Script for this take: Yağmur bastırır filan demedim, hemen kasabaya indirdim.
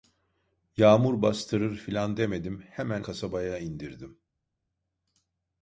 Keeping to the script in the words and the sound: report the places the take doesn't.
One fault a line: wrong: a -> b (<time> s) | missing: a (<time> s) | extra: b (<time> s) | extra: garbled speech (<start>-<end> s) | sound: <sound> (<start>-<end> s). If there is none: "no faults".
no faults